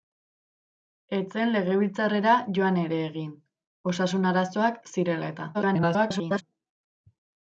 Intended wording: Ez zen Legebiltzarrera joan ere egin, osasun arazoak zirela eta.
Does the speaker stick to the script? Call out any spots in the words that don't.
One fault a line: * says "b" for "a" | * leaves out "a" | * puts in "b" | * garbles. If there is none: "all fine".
* garbles